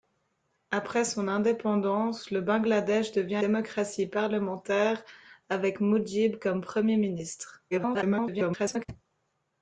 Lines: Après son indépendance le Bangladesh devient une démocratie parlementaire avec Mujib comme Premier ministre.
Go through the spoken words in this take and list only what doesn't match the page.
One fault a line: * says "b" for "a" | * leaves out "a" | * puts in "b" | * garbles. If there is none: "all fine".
* leaves out "une"
* garbles